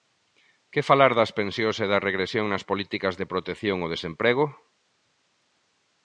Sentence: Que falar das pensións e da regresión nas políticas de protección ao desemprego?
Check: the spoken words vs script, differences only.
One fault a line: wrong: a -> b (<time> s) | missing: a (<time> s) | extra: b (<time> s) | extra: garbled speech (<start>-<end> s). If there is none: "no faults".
no faults